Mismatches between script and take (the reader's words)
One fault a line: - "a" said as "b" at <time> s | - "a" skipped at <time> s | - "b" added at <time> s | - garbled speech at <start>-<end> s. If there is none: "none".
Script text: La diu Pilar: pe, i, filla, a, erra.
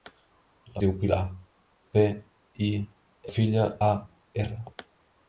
none